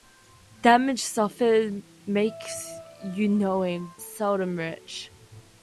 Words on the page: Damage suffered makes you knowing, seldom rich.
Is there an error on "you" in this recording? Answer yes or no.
no